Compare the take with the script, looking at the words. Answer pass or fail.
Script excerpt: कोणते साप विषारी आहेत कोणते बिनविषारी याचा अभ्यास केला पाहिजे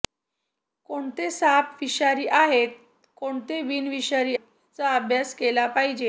pass